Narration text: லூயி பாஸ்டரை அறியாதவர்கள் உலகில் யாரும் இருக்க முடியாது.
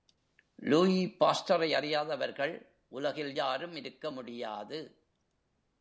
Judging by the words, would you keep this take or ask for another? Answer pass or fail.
pass